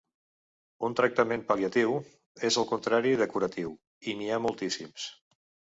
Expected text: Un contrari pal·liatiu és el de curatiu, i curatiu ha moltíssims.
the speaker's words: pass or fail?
fail